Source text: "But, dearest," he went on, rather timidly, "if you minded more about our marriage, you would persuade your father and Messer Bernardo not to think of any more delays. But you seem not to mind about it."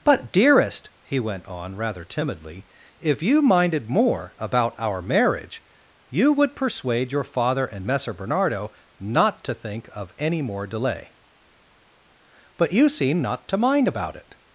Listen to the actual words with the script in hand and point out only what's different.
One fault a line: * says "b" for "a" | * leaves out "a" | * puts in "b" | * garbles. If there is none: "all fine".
* says "delay" for "delays"